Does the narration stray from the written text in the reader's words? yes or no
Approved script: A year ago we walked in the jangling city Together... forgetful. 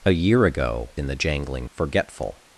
yes